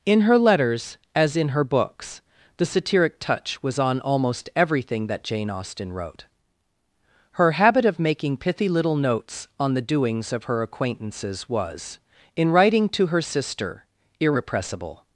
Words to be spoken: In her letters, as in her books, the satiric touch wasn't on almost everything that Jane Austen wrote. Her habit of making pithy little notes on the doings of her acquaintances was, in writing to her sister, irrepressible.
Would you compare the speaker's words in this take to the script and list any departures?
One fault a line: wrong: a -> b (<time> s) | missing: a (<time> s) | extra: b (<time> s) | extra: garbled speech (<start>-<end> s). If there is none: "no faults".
wrong: wasn't -> was (3.6 s)